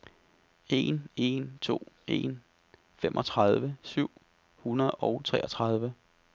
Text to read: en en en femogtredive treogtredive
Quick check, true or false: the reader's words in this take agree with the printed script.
false